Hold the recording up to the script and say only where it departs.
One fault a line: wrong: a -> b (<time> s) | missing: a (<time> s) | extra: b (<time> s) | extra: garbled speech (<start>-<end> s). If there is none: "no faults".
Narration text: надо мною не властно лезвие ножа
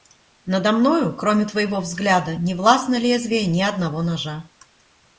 extra: кроме твоего взгляда (1.1 s)
extra: ни одного (3.5 s)